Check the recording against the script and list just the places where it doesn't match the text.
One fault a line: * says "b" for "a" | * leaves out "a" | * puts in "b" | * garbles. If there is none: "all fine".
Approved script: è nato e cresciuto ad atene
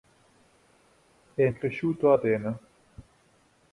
* leaves out "nato"
* leaves out "ad"